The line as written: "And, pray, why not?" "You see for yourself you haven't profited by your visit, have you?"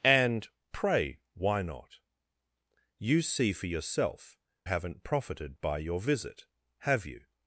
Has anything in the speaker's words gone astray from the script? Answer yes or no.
yes